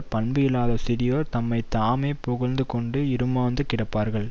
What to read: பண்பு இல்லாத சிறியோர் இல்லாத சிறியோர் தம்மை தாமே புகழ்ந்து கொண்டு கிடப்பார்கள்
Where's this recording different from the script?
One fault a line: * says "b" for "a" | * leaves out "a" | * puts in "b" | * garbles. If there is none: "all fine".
* leaves out "இல்லாத சிறியோர்"
* puts in "இறுமாந்து"